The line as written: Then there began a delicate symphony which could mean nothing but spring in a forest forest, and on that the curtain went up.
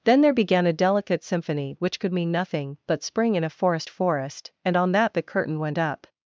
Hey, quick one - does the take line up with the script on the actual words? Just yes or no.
yes